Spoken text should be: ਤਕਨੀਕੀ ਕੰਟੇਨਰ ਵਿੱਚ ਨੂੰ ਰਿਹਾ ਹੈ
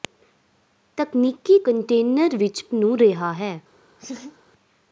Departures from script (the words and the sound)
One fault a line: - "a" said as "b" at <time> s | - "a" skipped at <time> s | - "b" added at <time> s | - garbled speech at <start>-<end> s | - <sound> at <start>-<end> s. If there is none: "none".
- laugh at 4.0-4.4 s